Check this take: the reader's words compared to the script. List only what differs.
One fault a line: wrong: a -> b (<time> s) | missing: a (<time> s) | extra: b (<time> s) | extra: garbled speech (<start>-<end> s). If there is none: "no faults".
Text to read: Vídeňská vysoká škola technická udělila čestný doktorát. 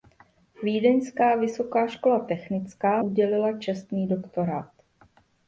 no faults